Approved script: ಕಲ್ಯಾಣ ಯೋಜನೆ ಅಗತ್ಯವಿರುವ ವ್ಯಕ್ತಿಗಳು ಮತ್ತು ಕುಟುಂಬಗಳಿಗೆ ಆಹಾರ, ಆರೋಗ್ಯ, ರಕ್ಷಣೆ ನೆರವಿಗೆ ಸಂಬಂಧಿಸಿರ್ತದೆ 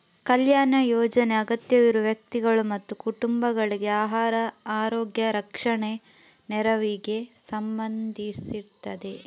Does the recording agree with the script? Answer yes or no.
yes